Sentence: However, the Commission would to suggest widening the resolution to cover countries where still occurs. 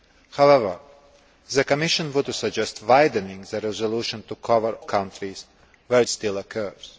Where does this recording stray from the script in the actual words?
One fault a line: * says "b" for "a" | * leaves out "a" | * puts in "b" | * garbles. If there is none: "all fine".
all fine